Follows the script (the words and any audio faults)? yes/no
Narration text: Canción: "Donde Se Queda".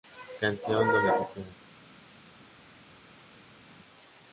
yes